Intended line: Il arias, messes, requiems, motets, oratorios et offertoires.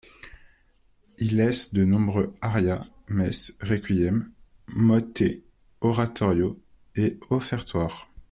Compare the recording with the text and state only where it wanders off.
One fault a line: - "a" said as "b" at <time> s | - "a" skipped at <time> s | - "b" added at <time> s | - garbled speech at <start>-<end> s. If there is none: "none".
- "laisse de nombreux" added at 1.4 s